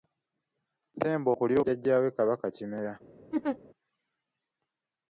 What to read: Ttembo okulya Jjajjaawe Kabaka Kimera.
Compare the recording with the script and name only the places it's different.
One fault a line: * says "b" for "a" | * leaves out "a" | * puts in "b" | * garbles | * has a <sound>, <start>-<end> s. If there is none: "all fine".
* has a laugh, 3.3-3.6 s